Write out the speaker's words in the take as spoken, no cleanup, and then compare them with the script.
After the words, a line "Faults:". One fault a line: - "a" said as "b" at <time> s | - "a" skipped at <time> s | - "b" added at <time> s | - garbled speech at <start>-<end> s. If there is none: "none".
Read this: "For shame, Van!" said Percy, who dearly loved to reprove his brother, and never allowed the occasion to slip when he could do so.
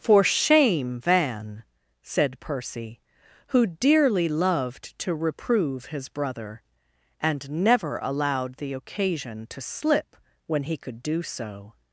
"For shame, Van!" said Percy, who dearly loved to reprove his brother, and never allowed the occasion to slip when he could do so.
Faults:
none